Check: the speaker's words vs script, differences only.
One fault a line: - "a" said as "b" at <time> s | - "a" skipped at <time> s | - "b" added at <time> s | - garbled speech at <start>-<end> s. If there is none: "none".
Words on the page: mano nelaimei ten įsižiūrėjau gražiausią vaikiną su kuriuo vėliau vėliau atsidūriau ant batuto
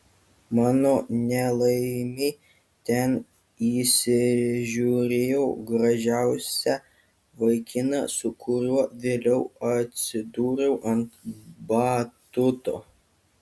- "vėliau" skipped at 9.4 s